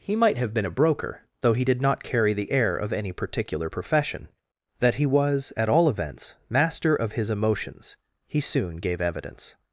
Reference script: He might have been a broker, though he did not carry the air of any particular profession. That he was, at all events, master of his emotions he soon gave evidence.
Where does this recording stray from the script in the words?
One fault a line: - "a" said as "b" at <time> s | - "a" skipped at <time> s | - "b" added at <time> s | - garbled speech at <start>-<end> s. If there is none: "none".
none